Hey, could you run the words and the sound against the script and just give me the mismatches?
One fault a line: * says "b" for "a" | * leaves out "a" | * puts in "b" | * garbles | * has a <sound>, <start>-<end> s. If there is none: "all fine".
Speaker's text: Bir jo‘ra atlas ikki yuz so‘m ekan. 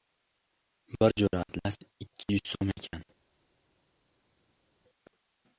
all fine